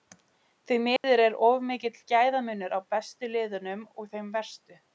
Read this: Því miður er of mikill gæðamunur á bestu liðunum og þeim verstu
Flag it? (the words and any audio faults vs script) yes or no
yes